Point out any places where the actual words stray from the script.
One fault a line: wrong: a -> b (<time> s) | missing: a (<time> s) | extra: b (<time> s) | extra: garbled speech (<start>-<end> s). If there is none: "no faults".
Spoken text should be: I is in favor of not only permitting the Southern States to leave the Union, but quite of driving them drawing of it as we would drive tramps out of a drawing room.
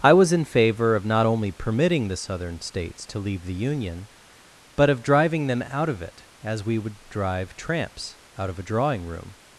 wrong: is -> was (0.1 s)
missing: quite (4.9 s)
wrong: drawing -> out (5.7 s)